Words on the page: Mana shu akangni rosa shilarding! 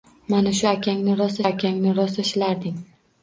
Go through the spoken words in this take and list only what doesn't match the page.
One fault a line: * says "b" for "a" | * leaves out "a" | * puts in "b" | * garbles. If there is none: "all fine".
* puts in "akangni rosa"